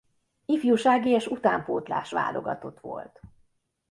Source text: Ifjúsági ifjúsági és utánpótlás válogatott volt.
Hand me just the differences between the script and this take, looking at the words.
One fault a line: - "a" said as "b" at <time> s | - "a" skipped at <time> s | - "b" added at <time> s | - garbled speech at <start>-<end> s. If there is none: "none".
- "ifjúsági" skipped at 1.1 s